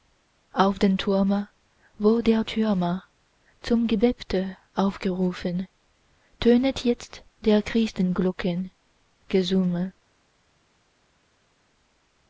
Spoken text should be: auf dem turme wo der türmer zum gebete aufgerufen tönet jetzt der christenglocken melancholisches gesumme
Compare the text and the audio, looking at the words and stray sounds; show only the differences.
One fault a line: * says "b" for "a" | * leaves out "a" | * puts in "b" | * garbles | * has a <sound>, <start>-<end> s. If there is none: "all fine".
* leaves out "melancholisches"